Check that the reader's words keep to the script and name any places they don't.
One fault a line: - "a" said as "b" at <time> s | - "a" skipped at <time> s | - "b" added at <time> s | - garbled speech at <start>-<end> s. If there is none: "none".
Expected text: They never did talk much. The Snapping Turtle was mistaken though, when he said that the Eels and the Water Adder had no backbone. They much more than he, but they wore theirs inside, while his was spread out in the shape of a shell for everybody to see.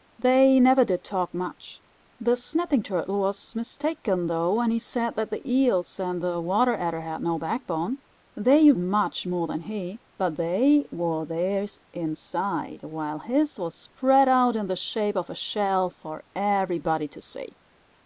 none